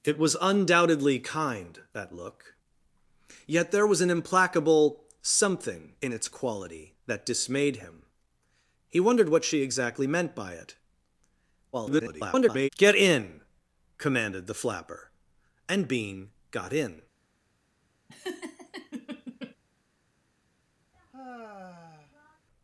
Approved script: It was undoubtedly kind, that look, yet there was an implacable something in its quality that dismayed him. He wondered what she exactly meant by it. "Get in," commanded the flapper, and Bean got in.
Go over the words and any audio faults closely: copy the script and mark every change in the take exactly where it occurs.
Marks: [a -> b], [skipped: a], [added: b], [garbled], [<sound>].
It was undoubtedly kind, that look, yet there was an implacable something in its quality that dismayed him. He wondered what she exactly meant by it. [garbled] "Get in," commanded the flapper, and Bean got in. [laugh] [sigh]